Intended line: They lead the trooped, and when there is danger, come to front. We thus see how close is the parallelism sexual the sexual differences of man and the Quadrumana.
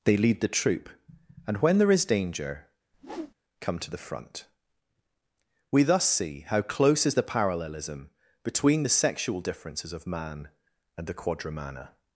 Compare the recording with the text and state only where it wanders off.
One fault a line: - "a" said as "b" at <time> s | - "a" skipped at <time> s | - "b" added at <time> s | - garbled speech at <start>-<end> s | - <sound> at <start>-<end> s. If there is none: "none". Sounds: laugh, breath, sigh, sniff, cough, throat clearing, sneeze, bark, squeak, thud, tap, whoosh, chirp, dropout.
- "trooped" said as "troop" at 0.5 s
- whoosh at 2.9-3.3 s
- "the" added at 3.9 s
- "sexual" said as "between" at 8.4 s